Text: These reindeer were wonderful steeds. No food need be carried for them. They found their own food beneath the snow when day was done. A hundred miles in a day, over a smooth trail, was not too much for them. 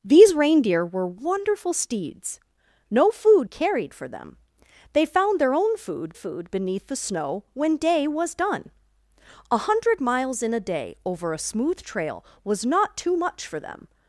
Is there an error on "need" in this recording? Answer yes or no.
yes